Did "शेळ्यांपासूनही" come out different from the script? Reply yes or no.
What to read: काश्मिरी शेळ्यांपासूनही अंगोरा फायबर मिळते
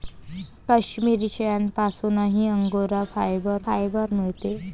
no